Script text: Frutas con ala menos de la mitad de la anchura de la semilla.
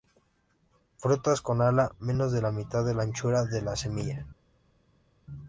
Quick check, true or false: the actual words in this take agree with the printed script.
true